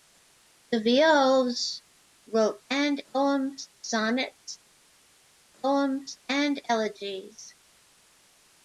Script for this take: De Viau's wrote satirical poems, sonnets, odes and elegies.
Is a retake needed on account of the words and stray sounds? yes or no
yes